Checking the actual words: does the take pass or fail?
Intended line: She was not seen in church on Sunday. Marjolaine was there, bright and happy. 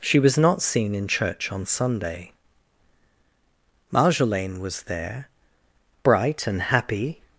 pass